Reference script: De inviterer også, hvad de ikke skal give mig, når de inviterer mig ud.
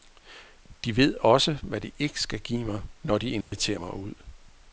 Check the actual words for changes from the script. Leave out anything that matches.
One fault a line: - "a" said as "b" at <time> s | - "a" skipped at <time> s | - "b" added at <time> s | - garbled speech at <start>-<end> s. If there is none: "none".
- "inviterer" said as "ved" at 1.0 s